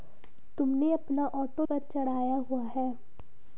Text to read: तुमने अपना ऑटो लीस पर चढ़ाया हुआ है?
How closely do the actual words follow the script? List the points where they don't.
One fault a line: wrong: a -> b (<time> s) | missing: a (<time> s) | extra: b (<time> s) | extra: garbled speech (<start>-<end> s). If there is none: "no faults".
missing: लीस (1.6 s)